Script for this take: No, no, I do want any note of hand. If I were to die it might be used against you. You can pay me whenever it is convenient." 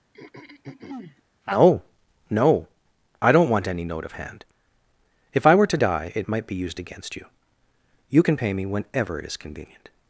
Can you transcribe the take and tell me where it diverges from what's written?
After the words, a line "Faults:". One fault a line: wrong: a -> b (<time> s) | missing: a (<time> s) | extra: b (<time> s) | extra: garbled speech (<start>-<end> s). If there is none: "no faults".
No, no, I don't want any note of hand. If I were to die it might be used against you. You can pay me whenever it is convenient."
Faults:
wrong: do -> don't (3.3 s)